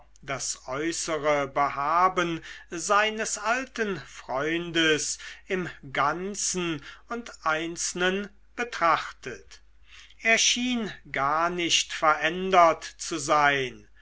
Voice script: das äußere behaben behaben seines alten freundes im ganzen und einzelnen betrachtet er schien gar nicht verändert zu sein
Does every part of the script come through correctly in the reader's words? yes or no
no